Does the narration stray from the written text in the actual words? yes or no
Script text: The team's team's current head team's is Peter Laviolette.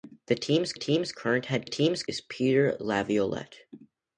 no